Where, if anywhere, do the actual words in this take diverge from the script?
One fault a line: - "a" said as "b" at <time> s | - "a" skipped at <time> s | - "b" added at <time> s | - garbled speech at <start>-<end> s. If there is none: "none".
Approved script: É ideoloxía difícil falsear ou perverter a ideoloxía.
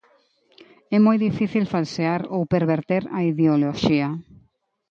- "ideoloxía" said as "moi" at 1.1 s